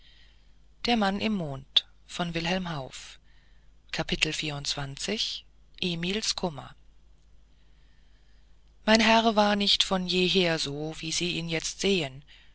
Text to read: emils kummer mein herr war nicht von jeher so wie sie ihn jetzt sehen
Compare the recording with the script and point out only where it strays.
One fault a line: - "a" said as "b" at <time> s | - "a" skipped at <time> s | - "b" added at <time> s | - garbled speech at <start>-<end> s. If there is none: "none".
none